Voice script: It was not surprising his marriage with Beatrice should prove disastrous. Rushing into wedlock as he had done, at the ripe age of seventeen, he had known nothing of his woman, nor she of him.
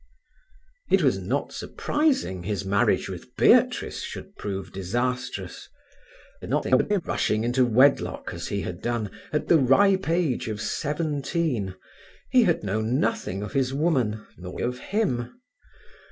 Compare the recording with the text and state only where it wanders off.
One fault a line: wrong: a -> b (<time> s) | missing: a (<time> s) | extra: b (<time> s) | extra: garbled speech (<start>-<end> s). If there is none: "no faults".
extra: garbled speech (6.4-7.0 s)
missing: she (14.6 s)